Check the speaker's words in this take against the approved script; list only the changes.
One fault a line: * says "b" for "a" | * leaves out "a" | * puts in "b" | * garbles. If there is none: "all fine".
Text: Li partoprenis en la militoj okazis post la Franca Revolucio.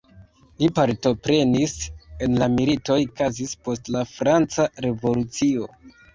all fine